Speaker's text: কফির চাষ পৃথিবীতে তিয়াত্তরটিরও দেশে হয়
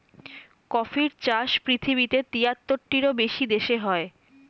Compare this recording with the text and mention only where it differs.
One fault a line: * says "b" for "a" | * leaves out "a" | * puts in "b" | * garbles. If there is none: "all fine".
* puts in "বেশি"